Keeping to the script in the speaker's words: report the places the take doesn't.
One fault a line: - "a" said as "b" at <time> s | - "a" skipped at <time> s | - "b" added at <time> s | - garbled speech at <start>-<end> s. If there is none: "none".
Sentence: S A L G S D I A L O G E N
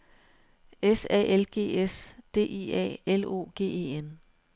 none